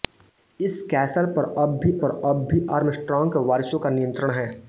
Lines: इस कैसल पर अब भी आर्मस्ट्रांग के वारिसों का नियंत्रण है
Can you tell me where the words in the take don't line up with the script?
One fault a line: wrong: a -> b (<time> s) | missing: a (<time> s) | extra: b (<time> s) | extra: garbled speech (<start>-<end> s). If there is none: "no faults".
extra: पर अब भी (2.0 s)